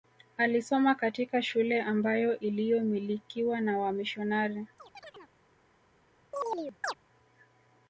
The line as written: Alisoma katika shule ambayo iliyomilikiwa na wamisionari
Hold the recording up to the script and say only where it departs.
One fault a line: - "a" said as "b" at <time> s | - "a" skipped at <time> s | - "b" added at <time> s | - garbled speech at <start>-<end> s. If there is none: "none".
none